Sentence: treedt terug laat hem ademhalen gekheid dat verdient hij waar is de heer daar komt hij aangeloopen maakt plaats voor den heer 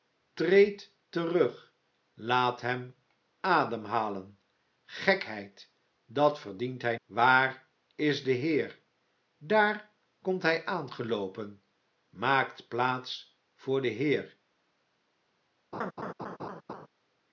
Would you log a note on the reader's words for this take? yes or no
no